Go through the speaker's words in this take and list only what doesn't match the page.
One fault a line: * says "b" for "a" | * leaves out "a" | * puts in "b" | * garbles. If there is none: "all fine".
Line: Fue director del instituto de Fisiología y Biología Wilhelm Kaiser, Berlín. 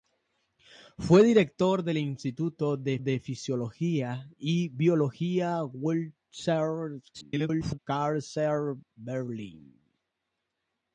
* puts in "de"
* garbles